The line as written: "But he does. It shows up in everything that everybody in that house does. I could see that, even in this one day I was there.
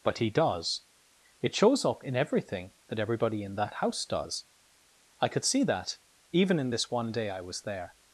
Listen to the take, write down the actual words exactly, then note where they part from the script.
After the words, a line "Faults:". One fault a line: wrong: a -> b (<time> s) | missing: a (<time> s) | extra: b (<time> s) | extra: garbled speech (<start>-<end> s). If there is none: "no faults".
"But he does. It shows up in everything that everybody in that house does. I could see that, even in this one day I was there.
Faults:
no faults